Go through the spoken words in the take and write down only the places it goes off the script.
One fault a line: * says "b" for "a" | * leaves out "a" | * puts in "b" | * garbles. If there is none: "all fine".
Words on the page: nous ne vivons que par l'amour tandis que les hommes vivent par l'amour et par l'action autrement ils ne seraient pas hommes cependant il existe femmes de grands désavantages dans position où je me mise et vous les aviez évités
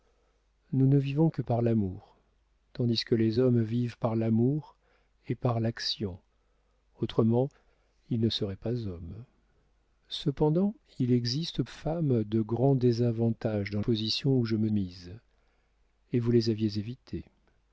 all fine